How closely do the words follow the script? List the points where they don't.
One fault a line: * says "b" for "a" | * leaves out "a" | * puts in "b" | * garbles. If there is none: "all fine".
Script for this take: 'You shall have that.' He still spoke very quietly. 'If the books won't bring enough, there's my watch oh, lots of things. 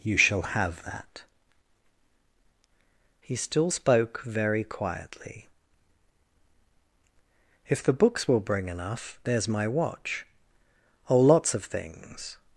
* says "will" for "won't"